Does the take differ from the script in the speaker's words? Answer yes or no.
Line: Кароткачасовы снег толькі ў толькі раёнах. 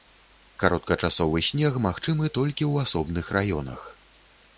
yes